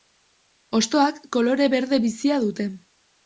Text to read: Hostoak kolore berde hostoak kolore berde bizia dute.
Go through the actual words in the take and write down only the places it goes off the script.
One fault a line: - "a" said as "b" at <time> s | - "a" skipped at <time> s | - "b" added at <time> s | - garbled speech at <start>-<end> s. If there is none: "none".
- "hostoak kolore berde" skipped at 2.0 s